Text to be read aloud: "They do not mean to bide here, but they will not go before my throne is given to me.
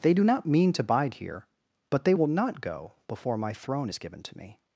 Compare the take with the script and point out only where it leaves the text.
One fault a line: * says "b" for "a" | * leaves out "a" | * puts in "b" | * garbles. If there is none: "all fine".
all fine